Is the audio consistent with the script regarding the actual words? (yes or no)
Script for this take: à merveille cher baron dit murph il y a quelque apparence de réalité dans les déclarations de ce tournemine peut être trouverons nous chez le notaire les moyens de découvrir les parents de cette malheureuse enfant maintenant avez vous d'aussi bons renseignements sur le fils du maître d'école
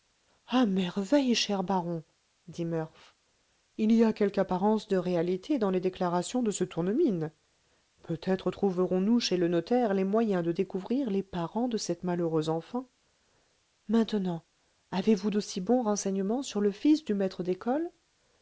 yes